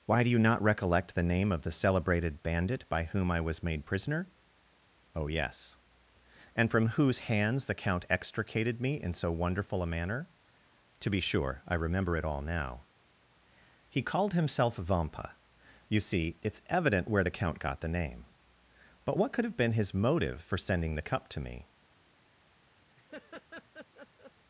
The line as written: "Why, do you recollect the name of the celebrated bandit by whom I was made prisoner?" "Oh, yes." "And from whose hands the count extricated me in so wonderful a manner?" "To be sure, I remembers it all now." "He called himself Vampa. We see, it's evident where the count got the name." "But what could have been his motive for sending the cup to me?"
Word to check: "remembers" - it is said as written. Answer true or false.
false